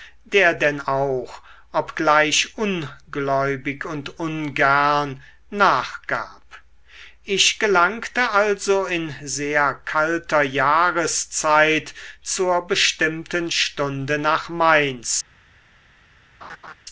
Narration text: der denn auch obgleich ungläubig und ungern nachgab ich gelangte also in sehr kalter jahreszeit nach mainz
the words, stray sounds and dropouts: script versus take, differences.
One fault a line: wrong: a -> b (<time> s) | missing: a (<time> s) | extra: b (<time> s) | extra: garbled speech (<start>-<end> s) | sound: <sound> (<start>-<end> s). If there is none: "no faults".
extra: zur bestimmten stunde (12.2 s)
sound: laugh (16.4-16.7 s)